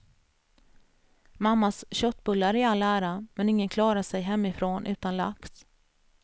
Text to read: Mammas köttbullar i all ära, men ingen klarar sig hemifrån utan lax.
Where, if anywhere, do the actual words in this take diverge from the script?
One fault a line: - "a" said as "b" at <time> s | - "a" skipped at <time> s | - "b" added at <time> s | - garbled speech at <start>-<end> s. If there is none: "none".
none